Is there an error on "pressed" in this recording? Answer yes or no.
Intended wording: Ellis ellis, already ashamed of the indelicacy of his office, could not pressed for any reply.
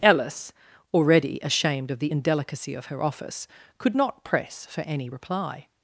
yes